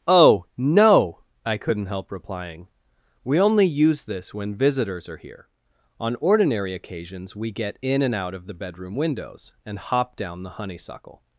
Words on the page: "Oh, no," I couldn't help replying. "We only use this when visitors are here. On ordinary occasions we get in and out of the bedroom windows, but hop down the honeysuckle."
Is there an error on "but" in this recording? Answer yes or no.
yes